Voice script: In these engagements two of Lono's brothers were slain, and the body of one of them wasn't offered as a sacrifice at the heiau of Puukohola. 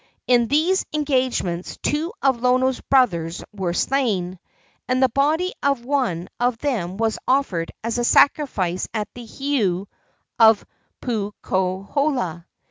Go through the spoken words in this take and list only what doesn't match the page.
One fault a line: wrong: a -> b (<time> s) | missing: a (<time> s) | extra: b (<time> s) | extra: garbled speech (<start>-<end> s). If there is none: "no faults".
wrong: wasn't -> was (7.0 s)